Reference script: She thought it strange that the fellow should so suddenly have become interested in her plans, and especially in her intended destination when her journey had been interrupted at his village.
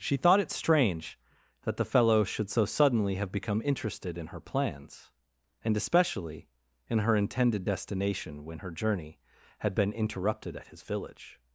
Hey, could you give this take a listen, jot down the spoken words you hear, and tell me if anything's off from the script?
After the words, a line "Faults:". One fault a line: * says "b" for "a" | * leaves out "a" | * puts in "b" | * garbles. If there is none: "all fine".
She thought it strange that the fellow should so suddenly have become interested in her plans, and especially in her intended destination when her journey had been interrupted at his village.
Faults:
all fine